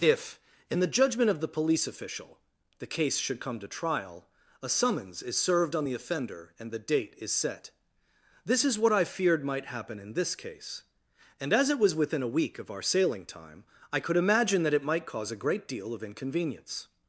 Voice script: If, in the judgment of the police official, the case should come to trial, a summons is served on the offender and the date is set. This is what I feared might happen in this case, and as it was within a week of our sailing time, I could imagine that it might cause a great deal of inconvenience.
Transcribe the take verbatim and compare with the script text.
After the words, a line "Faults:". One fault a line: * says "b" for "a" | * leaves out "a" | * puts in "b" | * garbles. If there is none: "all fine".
If, in the judgment of the police official, the case should come to trial, a summons is served on the offender and the date is set. This is what I feared might happen in this case, and as it was within a week of our sailing time, I could imagine that it might cause a great deal of inconvenience.
Faults:
all fine